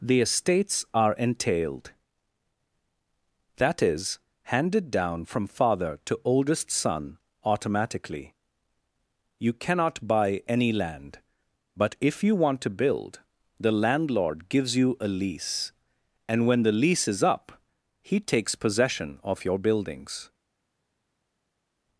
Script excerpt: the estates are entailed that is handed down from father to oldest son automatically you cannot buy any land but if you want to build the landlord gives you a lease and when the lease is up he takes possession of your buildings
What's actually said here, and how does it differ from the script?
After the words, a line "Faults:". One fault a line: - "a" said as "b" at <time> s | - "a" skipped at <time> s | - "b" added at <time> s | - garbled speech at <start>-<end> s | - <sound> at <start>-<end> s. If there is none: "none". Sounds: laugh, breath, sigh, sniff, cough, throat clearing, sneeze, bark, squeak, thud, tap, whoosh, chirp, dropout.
the estates are entailed that is handed down from father to oldest son automatically you cannot buy any land but if you want to build the landlord gives you a lease and when the lease is up he takes possession of your buildings
Faults:
none